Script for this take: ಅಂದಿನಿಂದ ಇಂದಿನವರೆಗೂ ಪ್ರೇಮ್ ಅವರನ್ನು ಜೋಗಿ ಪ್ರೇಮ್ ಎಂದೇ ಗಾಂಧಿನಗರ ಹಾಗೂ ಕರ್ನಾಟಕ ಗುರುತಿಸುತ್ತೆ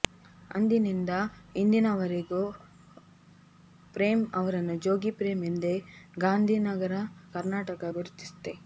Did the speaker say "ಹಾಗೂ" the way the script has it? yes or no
no